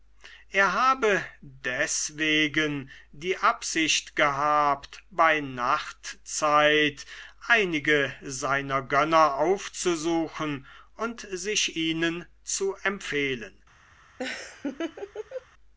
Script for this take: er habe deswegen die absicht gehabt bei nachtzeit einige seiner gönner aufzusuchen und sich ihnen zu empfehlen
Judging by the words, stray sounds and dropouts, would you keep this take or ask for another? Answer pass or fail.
fail